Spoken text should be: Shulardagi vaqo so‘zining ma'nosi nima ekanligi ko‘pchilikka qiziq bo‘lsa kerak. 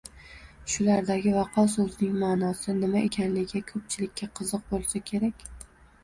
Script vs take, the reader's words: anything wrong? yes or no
no